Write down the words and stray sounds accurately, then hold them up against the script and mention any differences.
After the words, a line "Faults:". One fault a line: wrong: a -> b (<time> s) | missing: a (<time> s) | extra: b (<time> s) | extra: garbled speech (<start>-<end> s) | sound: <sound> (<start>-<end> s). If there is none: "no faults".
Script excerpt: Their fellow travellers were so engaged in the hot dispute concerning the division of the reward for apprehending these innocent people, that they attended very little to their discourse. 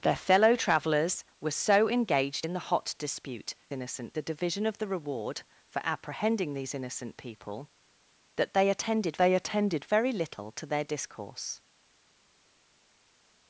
Their fellow travellers were so engaged in the hot dispute innocent the division of the reward for apprehending these innocent people, that they attended they attended very little to their discourse.
Faults:
wrong: concerning -> innocent (3.7 s)
extra: they attended (9.2 s)